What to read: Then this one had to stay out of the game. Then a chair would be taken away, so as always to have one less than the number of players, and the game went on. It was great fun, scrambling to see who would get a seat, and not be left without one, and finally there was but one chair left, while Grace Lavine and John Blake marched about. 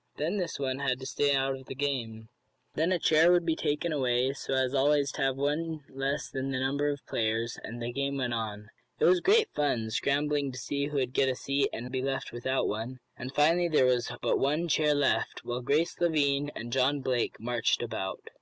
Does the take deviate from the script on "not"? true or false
true